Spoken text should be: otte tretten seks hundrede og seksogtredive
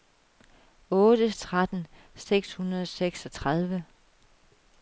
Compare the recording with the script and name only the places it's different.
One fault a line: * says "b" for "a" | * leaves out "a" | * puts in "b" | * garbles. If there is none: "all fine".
all fine